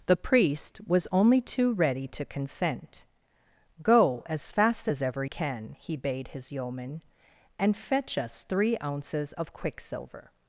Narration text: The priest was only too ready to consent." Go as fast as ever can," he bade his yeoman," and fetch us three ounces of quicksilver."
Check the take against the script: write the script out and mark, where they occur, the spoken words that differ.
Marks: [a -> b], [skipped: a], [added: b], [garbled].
The priest was only too ready to consent." Go as fast as ever can," he bade his yeoman," and fetch us three ounces of quicksilver."